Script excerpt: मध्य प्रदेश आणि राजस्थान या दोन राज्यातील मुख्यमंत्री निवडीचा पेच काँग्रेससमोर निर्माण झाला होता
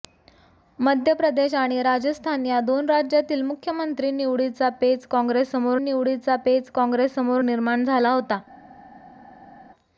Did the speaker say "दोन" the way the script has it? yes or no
yes